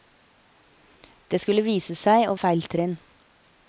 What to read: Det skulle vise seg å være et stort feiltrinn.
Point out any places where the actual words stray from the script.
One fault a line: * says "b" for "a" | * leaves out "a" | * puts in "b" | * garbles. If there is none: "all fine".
* leaves out "være et stort"